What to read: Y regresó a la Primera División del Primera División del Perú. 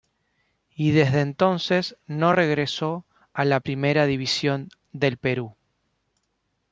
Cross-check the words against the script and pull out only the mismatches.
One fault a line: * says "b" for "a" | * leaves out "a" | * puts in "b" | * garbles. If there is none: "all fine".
* puts in "desde entonces no"
* leaves out "Primera División del"